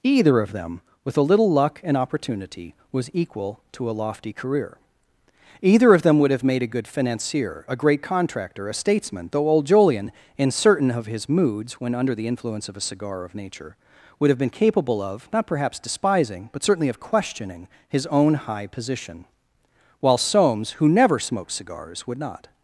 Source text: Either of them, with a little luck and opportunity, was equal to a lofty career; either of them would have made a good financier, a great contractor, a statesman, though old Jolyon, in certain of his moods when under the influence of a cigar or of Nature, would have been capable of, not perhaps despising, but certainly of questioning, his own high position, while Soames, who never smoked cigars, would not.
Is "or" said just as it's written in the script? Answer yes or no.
no